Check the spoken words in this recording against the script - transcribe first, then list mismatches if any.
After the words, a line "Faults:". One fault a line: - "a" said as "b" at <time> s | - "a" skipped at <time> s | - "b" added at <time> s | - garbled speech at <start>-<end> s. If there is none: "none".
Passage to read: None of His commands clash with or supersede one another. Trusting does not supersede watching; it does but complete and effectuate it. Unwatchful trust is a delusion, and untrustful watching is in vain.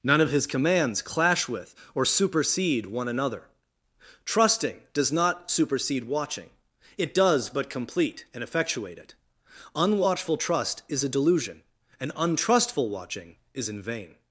None of His commands clash with or supersede one another. Trusting does not supersede watching; it does but complete and effectuate it. Unwatchful trust is a delusion, and untrustful watching is in vain.
Faults:
none